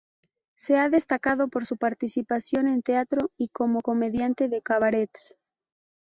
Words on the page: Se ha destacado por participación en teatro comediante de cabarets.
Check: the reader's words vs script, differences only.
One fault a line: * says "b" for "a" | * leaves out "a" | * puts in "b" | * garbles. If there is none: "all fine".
* puts in "su"
* puts in "y como"